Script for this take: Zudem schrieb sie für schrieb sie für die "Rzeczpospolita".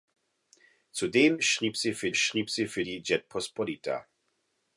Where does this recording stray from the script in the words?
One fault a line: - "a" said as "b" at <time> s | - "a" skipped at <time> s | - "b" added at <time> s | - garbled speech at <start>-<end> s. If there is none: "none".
none